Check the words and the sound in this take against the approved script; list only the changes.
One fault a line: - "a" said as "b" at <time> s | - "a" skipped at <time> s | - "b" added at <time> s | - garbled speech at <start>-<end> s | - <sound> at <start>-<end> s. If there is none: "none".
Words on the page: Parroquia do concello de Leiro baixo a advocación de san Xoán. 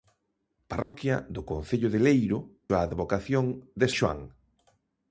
- dropout at 0.8-0.9 s
- "baixo" skipped at 2.4 s
- "san" skipped at 3.9 s